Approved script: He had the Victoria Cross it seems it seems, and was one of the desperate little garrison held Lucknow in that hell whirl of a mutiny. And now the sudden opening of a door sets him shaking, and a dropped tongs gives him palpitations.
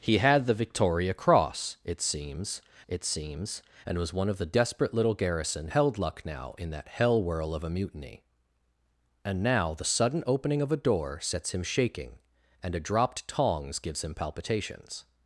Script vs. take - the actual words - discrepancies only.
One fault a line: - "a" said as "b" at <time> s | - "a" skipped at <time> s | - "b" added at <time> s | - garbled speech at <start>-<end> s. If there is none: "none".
none